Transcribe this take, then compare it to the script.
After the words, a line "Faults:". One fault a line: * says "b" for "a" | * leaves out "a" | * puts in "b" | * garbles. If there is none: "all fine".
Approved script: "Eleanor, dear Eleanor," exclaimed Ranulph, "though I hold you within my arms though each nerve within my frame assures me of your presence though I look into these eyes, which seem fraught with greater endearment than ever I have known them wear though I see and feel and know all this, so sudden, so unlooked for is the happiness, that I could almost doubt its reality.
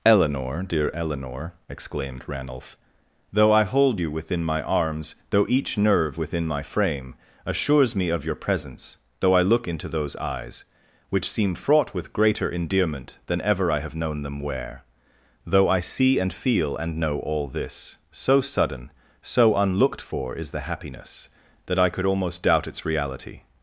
"Eleanor, dear Eleanor," exclaimed Ranulph, "though I hold you within my arms though each nerve within my frame assures me of your presence though I look into those eyes, which seem fraught with greater endearment than ever I have known them wear though I see and feel and know all this, so sudden, so unlooked for is the happiness, that I could almost doubt its reality.
Faults:
* says "those" for "these"